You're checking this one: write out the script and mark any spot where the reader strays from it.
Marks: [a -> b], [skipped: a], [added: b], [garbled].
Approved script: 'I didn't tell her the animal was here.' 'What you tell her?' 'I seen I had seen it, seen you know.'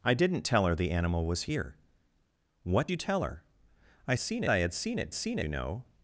'I didn't tell her the animal was here.' 'What you tell her?' 'I seen I had seen it, seen you know.'